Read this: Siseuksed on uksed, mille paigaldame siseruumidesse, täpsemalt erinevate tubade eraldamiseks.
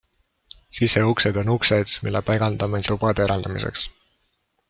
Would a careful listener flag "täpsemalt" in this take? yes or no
yes